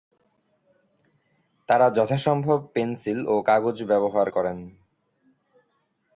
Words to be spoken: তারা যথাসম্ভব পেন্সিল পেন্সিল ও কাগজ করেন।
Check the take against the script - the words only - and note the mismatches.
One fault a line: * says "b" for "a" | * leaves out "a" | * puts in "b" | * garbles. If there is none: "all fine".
* leaves out "পেন্সিল"
* puts in "ব্যবহার"